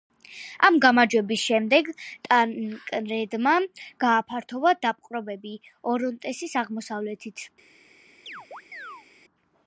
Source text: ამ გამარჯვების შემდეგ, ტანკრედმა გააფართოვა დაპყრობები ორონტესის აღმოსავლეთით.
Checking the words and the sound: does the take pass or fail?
fail